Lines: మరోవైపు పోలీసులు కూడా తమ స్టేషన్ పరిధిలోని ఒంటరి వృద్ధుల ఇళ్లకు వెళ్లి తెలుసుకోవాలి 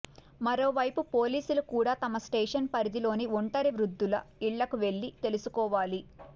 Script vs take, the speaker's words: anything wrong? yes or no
no